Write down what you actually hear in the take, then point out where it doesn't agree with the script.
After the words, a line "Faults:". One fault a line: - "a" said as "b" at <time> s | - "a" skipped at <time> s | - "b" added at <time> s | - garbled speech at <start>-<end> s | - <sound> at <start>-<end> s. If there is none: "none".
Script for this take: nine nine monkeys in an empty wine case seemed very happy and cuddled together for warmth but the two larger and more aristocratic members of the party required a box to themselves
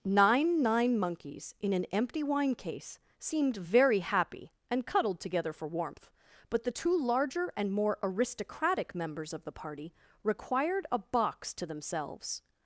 nine nine monkeys in an empty wine case seemed very happy and cuddled together for warmth but the two larger and more aristocratic members of the party required a box to themselves
Faults:
none